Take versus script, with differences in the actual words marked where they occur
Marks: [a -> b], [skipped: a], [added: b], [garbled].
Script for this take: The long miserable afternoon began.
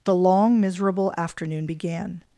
The long miserable afternoon began.